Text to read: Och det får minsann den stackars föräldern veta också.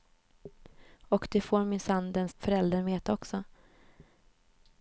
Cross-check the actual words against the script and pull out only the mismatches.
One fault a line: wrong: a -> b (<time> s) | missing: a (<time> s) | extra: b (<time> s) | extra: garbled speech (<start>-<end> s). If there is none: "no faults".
missing: stackars (2.3 s)